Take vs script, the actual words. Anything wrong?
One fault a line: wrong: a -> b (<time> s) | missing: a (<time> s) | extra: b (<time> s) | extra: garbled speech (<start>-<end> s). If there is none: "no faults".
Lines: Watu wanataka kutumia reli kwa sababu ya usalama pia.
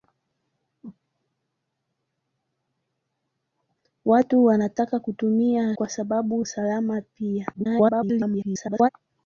missing: reli (5.7 s)
missing: ya (6.4 s)
extra: garbled speech (7.5-8.9 s)